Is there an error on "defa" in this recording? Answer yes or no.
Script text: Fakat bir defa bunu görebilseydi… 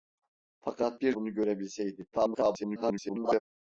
yes